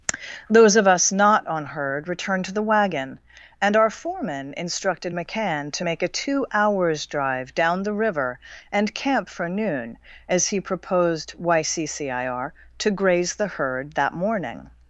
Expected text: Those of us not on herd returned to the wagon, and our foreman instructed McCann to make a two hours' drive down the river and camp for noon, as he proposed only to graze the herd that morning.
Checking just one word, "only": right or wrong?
wrong